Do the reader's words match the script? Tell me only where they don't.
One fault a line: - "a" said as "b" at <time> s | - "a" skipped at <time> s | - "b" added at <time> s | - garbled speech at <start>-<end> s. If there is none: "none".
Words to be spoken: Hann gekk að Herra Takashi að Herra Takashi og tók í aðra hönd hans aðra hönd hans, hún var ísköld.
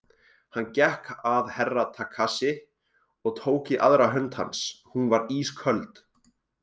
- "að Herra Takashi" skipped at 2.5 s
- "aðra hönd hans" skipped at 4.6 s